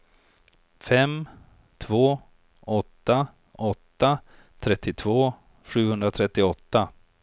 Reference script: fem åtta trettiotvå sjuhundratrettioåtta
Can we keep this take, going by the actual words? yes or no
no